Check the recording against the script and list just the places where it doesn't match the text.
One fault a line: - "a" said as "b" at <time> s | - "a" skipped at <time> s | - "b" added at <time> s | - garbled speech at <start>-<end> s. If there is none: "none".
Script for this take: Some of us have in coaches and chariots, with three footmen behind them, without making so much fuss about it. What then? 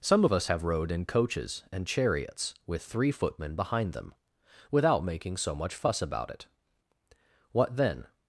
- "rode" added at 0.6 s